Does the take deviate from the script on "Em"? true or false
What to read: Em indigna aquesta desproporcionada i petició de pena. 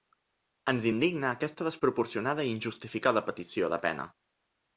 true